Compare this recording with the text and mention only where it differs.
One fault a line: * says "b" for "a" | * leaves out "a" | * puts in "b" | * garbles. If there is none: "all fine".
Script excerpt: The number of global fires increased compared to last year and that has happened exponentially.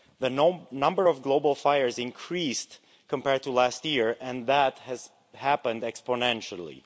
all fine